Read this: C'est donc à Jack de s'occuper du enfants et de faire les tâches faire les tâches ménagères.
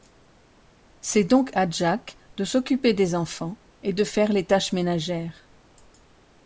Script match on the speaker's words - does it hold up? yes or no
no